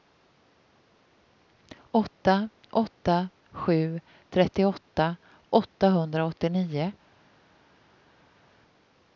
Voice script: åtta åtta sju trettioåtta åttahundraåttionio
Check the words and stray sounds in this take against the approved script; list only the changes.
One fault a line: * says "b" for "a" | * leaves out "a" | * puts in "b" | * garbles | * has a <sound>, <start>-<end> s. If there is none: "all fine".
all fine